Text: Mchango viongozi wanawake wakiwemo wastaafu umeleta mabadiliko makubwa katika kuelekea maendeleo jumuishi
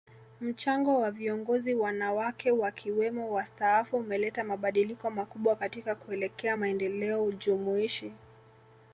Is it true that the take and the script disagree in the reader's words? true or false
true